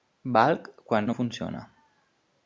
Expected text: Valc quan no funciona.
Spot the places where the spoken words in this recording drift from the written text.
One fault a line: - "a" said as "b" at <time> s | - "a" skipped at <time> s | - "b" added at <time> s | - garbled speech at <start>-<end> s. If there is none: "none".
none